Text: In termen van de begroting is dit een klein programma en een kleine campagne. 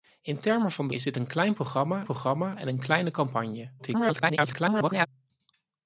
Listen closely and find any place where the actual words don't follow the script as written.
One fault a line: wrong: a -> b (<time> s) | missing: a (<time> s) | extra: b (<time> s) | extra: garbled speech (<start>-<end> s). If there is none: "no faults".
missing: begroting (0.9 s)
extra: programma (2.0 s)
extra: garbled speech (3.8-5.1 s)